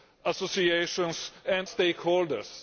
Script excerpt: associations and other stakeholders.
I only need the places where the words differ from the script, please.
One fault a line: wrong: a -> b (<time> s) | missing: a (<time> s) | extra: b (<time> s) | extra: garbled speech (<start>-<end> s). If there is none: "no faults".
missing: other (1.7 s)